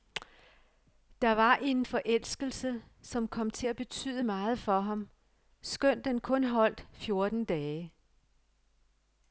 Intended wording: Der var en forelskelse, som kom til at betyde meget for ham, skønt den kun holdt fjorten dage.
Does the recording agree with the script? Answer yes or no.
yes